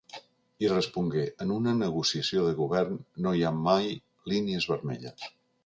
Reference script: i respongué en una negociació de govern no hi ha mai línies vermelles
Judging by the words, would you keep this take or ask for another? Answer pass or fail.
pass